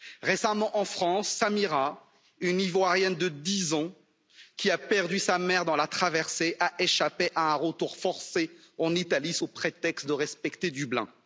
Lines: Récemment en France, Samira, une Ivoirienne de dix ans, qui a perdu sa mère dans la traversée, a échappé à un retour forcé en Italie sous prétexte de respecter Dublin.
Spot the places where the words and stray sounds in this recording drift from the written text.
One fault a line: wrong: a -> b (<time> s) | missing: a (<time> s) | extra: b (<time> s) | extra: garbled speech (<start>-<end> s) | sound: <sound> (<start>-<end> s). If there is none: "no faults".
no faults